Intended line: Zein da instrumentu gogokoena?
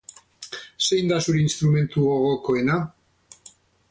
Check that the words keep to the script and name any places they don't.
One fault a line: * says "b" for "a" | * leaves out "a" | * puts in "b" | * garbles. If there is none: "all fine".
* puts in "zure"